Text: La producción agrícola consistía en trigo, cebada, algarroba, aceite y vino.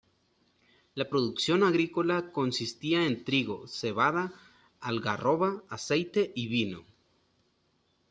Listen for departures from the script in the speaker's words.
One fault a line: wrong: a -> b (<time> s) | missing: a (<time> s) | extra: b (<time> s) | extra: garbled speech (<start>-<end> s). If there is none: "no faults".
no faults